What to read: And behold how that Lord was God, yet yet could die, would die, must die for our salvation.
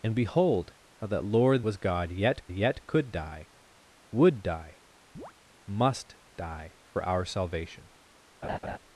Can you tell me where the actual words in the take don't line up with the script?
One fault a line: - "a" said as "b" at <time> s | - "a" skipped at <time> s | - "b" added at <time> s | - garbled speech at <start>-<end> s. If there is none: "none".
none